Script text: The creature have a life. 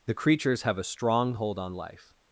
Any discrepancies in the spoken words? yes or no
yes